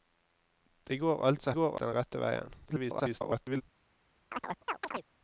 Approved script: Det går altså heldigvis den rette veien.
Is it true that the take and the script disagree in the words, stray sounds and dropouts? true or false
true